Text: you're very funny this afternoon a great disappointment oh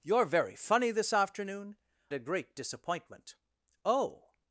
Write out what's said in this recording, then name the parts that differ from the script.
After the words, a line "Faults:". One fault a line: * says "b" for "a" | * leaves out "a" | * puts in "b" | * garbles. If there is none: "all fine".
you're very funny this afternoon a great disappointment oh
Faults:
all fine